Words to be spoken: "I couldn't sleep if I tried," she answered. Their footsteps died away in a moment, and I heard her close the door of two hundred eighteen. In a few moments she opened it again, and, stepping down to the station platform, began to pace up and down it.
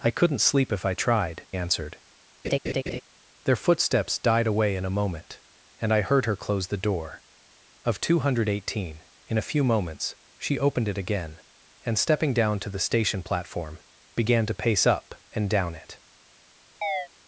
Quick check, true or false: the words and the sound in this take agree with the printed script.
false